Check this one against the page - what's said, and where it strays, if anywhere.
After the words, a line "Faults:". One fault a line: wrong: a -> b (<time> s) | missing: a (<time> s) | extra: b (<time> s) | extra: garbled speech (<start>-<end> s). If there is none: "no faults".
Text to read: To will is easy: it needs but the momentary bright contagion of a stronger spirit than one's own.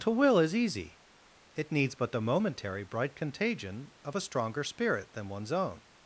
To will is easy: it needs but the momentary bright contagion of a stronger spirit than one's own.
Faults:
no faults